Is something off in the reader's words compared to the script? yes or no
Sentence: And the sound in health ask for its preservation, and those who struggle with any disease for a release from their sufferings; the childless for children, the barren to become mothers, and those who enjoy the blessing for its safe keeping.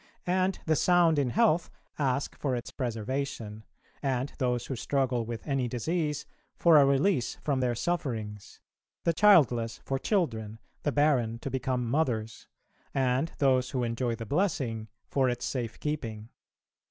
no